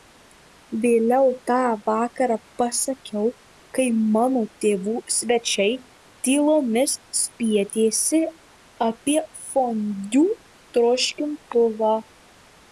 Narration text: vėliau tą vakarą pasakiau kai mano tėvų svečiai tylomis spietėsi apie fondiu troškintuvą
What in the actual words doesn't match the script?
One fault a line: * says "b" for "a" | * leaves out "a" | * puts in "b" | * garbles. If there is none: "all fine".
all fine